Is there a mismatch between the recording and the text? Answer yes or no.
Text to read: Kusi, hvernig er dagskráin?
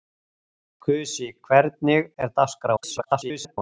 yes